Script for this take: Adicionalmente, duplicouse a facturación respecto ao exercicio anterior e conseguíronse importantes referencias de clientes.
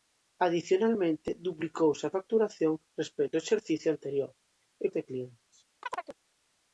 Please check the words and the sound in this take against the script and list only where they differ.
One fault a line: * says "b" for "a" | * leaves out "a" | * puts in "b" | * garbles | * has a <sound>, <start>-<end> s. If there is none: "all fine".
* leaves out "conseguíronse importantes referencias"
* has a chirp, 5.8-6.2 s